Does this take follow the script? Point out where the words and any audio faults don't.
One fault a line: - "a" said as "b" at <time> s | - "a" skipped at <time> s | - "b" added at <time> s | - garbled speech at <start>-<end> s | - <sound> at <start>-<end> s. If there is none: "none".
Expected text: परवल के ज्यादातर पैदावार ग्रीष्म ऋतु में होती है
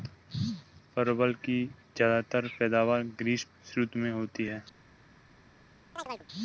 - "के" said as "की" at 1.4 s
- chirp at 6.0-6.3 s